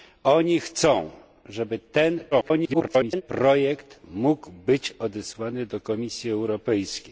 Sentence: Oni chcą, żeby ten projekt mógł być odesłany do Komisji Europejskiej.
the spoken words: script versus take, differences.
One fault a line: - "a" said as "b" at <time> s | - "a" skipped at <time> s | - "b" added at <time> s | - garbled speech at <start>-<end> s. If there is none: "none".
- garbled speech at 2.3-3.2 s